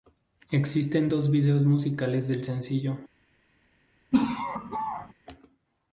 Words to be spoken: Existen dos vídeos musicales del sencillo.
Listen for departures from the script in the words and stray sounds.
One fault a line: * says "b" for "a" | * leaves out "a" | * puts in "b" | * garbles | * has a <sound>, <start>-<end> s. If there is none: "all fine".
* has a laugh, 4.1-5.1 s